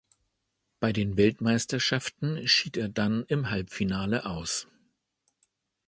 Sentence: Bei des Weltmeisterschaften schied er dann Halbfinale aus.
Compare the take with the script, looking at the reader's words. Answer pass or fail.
fail